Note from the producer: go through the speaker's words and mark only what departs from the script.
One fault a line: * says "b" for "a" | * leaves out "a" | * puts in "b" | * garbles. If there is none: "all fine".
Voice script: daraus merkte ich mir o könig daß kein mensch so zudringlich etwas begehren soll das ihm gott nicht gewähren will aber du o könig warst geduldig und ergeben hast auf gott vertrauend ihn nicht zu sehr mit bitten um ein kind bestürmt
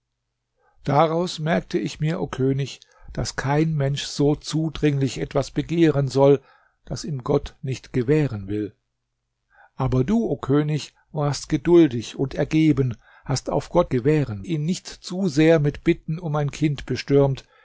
* says "gewähren" for "vertrauend"